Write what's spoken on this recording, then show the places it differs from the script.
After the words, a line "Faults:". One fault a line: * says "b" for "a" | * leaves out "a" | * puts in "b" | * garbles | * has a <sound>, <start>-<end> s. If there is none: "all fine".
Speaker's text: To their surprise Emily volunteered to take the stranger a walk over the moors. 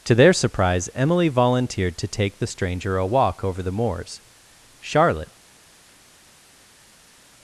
To their surprise Emily volunteered to take the stranger a walk over the moors. Charlotte
Faults:
* puts in "Charlotte"